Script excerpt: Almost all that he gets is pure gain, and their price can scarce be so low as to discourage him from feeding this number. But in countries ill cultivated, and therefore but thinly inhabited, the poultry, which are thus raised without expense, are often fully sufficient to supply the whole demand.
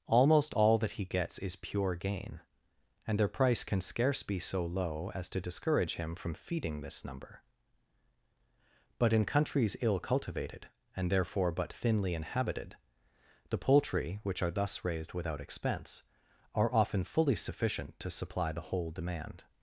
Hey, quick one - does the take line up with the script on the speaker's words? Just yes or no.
yes